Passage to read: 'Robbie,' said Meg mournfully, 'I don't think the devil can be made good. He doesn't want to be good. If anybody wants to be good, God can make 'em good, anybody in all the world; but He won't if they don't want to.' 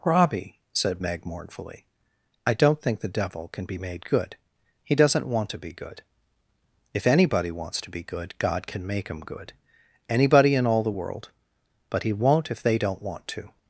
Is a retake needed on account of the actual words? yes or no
yes